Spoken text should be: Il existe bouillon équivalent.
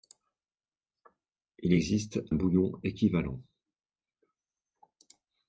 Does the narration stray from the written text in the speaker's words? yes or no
no